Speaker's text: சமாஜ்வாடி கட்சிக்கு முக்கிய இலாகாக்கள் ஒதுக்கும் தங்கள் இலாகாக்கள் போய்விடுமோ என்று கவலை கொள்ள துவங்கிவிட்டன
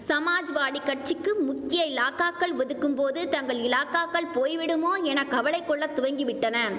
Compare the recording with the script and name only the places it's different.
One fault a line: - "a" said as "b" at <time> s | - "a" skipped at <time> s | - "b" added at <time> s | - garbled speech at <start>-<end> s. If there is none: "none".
- "போது" added at 3.0 s
- "என்று" said as "என" at 5.0 s